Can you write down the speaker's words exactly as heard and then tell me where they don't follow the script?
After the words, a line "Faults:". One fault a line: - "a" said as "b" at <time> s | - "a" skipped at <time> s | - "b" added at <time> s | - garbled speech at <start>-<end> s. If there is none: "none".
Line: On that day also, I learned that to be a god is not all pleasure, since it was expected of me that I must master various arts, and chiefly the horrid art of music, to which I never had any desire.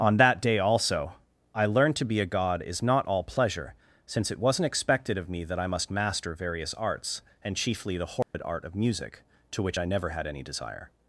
On that day also, I learned to be a god is not all pleasure, since it wasn't expected of me that I must master various arts, and chiefly the horrid art of music, to which I never had any desire.
Faults:
- "that" skipped at 1.9 s
- "was" said as "wasn't" at 4.4 s